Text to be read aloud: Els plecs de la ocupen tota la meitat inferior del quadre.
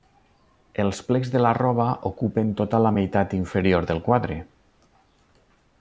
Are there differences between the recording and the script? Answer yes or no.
yes